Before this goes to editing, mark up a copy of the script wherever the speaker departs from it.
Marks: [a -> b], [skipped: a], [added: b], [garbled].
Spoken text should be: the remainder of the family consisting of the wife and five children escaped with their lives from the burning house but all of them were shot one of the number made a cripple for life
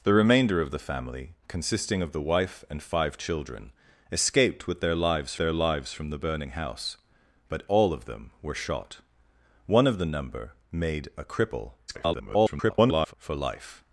the remainder of the family consisting of the wife and five children escaped with their lives [added: their lives] from the burning house but all of them were shot one of the number made a cripple [garbled] for life